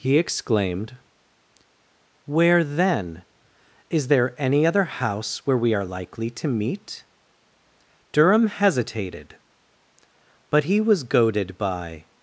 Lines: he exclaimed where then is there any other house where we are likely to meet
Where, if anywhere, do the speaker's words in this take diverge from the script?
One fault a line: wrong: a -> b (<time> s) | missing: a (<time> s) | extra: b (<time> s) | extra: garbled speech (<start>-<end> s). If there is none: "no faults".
extra: durham hesitated but he was goaded by (8.1 s)